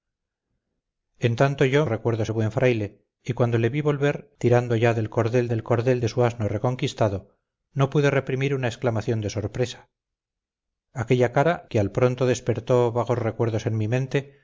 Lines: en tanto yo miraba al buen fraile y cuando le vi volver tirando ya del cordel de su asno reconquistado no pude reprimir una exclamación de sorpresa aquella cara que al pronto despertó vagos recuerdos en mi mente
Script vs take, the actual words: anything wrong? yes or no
yes